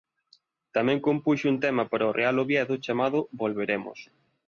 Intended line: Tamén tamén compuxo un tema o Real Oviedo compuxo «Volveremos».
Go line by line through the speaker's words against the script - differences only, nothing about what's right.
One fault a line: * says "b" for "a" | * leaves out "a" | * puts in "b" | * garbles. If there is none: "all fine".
* leaves out "tamén"
* puts in "para"
* says "chamado" for "compuxo"